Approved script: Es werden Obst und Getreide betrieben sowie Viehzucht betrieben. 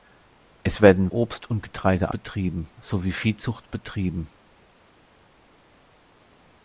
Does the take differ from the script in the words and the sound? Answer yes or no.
no